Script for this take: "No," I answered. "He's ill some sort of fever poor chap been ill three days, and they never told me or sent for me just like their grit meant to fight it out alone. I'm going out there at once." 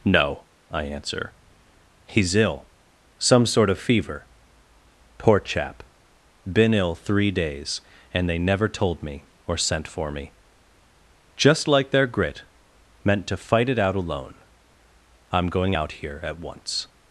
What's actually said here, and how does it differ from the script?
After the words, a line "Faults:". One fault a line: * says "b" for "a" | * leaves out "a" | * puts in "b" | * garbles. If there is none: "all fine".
"No," I answer. "He's ill some sort of fever poor chap been ill three days, and they never told me or sent for me just like their grit meant to fight it out alone. I'm going out here at once."
Faults:
* says "answer" for "answered"
* says "here" for "there"